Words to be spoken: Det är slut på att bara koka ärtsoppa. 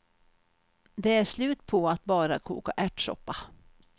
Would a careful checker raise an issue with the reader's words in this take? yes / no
no